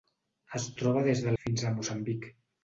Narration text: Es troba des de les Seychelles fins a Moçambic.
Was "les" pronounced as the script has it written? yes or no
no